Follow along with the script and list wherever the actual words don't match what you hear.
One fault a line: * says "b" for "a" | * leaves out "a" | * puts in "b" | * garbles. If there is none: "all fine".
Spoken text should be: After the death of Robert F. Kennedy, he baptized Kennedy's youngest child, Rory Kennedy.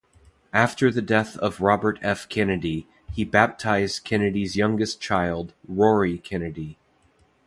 all fine